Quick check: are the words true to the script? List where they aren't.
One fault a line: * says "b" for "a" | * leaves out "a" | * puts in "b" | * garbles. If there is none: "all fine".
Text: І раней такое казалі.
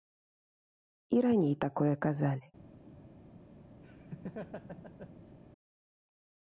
all fine